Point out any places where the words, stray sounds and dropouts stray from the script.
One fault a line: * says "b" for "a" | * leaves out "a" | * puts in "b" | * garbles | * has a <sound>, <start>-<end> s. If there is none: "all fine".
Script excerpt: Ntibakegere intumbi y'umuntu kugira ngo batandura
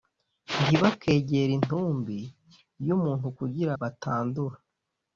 * leaves out "ngo"